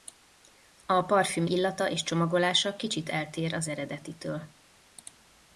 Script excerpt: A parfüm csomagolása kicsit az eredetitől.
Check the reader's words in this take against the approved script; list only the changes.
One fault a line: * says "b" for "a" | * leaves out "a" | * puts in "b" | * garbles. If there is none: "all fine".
* puts in "illata és"
* puts in "eltér"